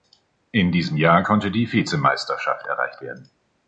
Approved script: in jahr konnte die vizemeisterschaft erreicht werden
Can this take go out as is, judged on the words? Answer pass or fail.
fail